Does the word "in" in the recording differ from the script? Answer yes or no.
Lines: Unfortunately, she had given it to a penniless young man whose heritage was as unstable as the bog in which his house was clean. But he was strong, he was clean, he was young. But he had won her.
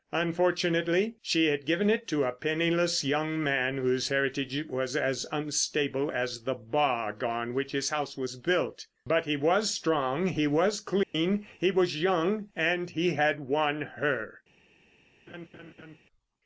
yes